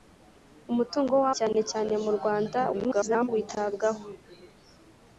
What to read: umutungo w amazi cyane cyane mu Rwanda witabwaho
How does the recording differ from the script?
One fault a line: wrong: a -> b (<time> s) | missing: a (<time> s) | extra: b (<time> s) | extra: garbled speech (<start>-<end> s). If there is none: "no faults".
missing: amazi (1.2 s)
extra: garbled speech (2.7-3.3 s)